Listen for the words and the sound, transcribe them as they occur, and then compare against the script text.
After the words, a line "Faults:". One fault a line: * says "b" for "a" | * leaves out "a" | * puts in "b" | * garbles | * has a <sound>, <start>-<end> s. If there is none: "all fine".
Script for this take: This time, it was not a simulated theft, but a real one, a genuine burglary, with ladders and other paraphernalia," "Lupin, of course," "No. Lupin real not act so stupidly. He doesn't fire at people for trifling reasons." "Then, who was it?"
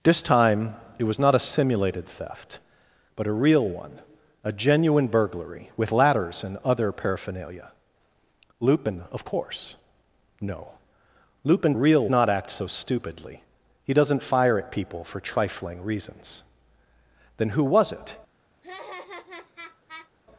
This time, it was not a simulated theft, but a real one, a genuine burglary, with ladders and other paraphernalia," "Lupin, of course," "No. Lupin real not act so stupidly. He doesn't fire at people for trifling reasons." "Then, who was it?"
Faults:
* has a laugh, 18.6-20.1 s